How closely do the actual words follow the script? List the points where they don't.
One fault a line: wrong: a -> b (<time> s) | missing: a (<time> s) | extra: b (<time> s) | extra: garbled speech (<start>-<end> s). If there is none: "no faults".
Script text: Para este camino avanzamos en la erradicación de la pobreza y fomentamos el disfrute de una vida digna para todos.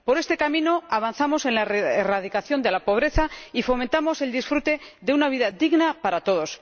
wrong: Para -> Por (0.1 s)